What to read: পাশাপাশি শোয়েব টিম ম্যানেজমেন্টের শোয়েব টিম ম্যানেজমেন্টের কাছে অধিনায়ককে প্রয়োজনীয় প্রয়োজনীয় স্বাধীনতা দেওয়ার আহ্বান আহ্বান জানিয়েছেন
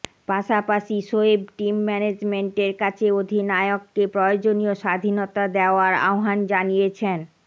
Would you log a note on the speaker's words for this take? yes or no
yes